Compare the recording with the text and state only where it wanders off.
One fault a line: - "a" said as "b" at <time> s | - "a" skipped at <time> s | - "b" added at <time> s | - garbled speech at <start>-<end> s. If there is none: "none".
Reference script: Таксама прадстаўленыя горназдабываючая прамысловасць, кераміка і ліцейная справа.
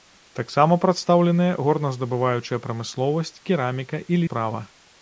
- "ліцейная" skipped at 4.2 s